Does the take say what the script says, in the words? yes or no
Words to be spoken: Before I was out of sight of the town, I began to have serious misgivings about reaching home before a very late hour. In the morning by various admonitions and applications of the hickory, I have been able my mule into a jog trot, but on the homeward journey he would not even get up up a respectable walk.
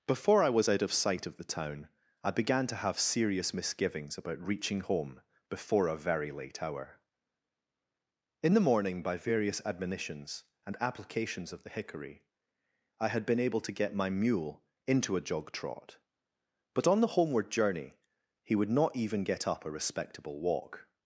no